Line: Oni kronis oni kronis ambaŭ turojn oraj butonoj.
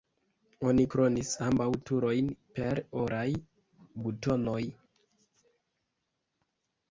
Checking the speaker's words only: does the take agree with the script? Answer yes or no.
no